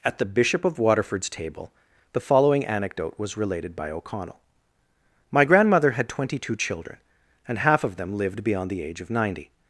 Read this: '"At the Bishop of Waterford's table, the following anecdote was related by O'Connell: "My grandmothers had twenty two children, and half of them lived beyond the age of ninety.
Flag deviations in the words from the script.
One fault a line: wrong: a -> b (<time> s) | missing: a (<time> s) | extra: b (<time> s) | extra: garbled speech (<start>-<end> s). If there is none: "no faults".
wrong: grandmothers -> grandmother (5.4 s)